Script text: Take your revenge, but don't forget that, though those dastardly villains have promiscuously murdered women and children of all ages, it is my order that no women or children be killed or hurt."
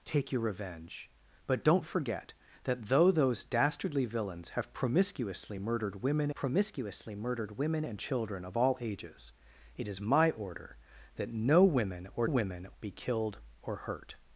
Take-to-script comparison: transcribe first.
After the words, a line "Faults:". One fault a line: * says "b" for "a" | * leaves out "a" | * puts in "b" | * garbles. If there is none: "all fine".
Take your revenge, but don't forget that, though those dastardly villains have promiscuously murdered women promiscuously murdered women and children of all ages, it is my order that no women or women be killed or hurt."
Faults:
* puts in "promiscuously murdered women"
* says "women" for "children"